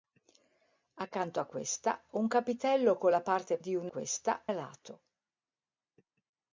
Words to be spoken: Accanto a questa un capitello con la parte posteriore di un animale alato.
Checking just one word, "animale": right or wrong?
wrong